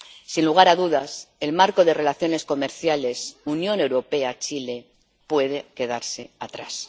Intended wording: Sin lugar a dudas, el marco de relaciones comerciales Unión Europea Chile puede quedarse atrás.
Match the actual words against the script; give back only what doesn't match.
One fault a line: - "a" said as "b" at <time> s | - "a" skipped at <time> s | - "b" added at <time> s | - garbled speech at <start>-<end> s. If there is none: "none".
none